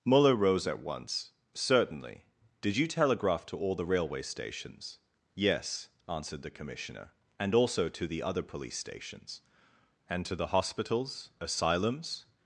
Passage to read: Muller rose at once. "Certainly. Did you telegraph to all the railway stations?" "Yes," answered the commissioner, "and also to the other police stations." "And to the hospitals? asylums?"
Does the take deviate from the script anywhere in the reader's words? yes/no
no